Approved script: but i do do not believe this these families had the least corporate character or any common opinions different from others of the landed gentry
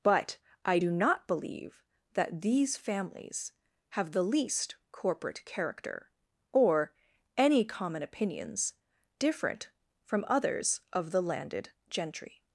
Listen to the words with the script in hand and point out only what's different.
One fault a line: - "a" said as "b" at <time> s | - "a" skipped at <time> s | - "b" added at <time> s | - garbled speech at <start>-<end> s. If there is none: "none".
- "do" skipped at 0.9 s
- "this" said as "that" at 2.1 s
- "had" said as "have" at 3.9 s